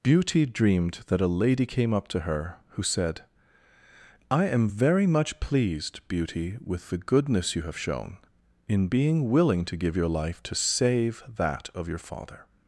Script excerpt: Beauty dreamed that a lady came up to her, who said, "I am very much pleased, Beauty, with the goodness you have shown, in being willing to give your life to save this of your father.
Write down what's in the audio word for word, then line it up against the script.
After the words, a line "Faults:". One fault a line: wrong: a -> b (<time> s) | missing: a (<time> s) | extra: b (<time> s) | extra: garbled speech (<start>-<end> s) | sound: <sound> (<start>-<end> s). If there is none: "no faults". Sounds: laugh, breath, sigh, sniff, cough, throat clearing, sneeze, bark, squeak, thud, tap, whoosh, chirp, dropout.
Beauty dreamed that a lady came up to her, who said, "I am very much pleased, Beauty, with the goodness you have shown, in being willing to give your life to save that of your father.
Faults:
wrong: this -> that (11.3 s)